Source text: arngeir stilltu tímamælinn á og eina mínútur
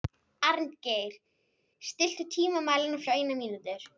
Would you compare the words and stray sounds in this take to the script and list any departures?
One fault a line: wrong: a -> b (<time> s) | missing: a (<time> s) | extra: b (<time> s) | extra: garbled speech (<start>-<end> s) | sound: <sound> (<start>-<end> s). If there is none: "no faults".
no faults